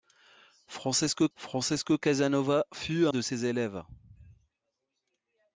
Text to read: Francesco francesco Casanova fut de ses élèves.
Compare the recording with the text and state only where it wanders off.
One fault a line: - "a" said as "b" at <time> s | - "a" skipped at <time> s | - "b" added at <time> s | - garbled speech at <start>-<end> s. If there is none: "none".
none